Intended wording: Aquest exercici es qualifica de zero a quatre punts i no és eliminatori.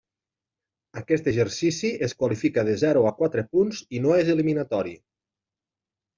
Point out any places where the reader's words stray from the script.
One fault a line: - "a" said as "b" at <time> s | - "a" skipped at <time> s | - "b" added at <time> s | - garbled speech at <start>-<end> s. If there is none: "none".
none